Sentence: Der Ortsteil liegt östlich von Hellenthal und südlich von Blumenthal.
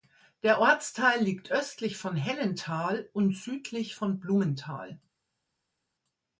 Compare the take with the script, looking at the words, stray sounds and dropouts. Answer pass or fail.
pass